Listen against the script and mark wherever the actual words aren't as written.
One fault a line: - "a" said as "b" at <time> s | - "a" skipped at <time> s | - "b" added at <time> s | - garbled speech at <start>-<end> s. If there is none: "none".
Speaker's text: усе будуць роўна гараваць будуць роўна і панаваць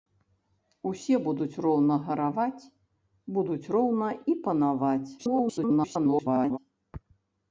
- garbled speech at 5.2-6.6 s